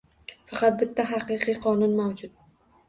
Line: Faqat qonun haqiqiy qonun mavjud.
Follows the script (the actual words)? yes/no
no